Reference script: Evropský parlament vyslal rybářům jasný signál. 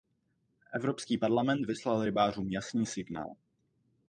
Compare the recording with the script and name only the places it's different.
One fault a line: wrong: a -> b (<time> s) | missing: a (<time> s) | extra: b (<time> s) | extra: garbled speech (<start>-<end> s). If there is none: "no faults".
no faults